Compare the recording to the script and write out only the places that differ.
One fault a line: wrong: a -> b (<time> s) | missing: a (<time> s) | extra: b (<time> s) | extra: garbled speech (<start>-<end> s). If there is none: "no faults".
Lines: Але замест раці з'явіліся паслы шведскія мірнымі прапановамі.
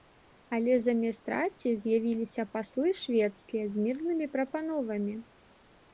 extra: з (3.7 s)